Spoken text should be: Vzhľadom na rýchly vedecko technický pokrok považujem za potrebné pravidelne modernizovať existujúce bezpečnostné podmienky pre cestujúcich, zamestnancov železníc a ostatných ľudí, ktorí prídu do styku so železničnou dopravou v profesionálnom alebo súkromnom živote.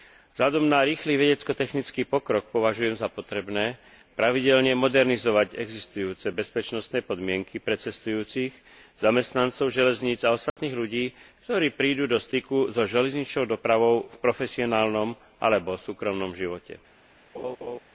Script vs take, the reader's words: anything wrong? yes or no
no